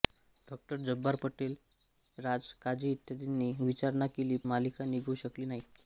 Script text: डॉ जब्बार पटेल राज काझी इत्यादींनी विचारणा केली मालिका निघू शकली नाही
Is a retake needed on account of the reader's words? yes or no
no